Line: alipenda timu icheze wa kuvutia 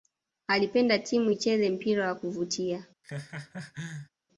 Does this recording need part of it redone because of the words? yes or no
yes